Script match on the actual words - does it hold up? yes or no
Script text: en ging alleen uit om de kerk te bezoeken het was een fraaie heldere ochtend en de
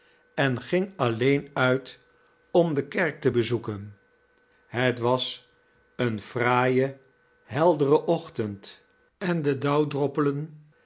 yes